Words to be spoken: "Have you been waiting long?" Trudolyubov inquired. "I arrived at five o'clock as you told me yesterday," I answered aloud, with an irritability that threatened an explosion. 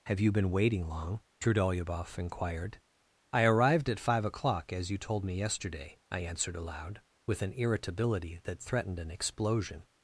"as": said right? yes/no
yes